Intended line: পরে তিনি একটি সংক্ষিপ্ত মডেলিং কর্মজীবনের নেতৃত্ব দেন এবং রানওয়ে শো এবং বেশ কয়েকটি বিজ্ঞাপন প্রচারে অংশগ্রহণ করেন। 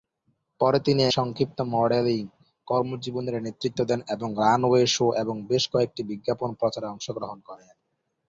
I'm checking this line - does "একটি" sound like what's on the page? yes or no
no